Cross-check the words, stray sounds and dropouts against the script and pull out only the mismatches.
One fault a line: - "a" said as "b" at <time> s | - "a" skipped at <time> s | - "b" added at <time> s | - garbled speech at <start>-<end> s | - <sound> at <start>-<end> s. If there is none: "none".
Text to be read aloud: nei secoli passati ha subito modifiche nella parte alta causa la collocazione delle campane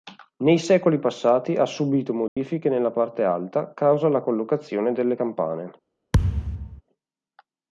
- dropout at 2.3-2.4 s
- thud at 6.1-6.8 s